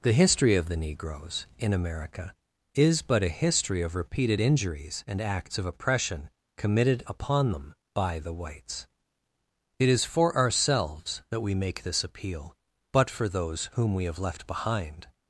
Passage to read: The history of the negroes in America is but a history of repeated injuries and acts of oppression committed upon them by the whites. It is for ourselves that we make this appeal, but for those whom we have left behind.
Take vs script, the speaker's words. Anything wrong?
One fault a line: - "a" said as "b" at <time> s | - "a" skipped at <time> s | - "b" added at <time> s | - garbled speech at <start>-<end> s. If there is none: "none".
none